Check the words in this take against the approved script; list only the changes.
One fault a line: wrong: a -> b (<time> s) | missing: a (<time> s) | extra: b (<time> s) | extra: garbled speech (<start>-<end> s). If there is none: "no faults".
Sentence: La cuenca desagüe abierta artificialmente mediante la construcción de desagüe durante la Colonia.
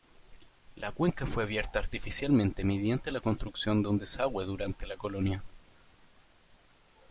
wrong: desagüe -> fue (1.3 s)
extra: un (3.9 s)